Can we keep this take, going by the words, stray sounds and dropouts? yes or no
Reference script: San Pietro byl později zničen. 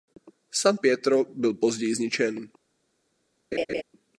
no